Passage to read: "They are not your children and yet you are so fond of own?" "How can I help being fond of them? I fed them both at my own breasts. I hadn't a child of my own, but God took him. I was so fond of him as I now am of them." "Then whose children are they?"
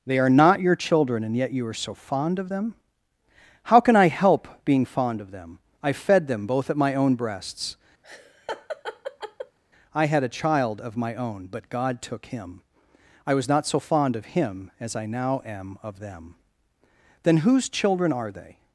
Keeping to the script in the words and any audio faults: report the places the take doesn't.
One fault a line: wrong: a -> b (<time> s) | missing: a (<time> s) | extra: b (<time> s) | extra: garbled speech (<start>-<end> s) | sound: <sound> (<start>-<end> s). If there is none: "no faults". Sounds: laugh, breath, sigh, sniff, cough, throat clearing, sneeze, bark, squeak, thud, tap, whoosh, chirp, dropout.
wrong: own -> them (2.5 s)
sound: laugh (8.0-9.6 s)
wrong: hadn't -> had (10.1 s)
extra: not (13.5 s)